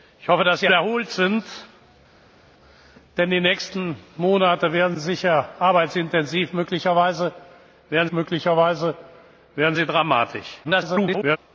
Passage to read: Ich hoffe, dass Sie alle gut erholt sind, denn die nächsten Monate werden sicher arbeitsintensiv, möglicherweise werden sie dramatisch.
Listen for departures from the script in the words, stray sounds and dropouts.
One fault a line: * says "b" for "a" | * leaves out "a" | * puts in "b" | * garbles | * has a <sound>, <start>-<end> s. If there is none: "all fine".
* leaves out "alle gut"
* puts in "möglicherweise werden"
* garbles